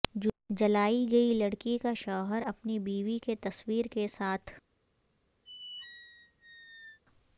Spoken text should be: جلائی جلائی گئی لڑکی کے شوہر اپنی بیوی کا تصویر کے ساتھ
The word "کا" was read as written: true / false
false